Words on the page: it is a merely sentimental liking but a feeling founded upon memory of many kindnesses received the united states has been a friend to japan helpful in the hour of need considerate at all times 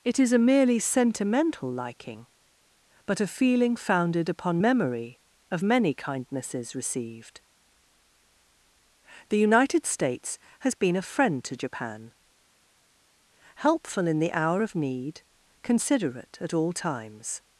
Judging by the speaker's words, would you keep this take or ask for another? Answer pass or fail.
pass